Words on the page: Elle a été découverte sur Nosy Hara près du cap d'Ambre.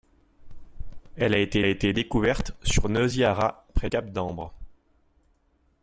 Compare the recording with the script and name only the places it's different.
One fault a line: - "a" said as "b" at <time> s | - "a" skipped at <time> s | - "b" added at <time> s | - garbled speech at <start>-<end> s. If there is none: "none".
- "été" added at 1.7 s
- "du" skipped at 3.9 s